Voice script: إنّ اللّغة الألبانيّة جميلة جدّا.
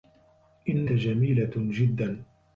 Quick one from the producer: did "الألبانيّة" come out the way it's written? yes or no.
no